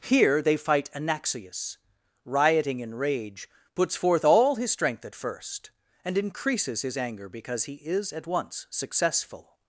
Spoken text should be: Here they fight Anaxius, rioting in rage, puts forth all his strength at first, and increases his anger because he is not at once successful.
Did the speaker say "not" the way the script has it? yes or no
no